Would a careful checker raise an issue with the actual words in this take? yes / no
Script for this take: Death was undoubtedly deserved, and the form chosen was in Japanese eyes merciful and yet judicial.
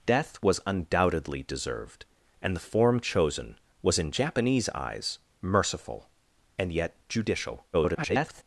yes